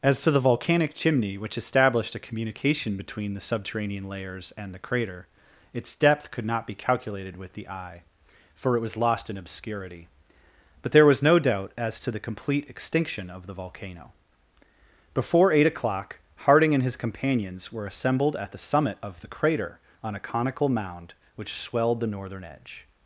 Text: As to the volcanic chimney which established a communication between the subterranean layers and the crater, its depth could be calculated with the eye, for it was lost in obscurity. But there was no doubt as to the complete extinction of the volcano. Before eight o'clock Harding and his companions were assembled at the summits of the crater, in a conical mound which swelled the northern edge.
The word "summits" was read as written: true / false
false